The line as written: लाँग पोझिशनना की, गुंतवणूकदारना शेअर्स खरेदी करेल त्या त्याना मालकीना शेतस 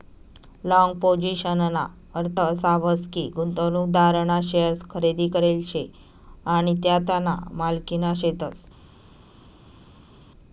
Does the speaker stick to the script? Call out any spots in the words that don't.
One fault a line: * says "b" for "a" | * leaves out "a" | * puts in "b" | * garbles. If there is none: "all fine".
* puts in "अर्थ असा व्हस"
* puts in "शे आणि"